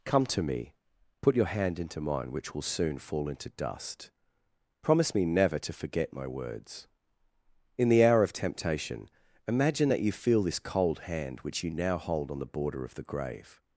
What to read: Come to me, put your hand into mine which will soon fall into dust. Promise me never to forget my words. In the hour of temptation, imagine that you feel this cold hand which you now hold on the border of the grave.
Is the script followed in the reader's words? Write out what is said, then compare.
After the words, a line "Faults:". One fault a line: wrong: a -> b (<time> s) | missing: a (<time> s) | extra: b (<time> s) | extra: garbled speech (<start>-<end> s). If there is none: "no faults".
Come to me, put your hand into mine which will soon fall into dust. Promise me never to forget my words. In the hour of temptation, imagine that you feel this cold hand which you now hold on the border of the grave.
Faults:
no faults